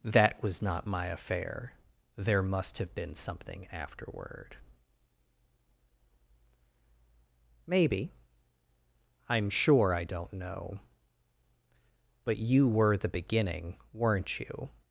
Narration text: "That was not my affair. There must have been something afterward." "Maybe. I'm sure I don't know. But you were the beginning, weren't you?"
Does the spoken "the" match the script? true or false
true